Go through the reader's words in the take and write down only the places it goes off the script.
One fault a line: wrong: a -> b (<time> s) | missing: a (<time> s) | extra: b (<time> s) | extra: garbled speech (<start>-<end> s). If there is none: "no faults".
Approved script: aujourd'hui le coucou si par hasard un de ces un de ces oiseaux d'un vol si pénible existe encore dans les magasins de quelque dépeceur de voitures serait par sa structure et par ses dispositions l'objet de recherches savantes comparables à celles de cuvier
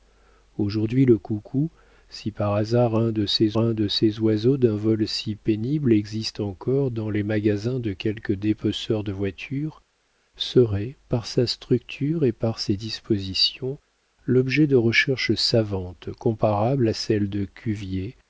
no faults